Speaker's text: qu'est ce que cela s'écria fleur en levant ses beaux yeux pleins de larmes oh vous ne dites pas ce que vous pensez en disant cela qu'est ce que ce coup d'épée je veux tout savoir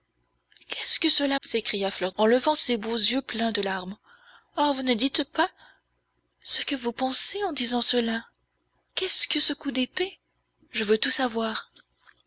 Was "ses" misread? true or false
false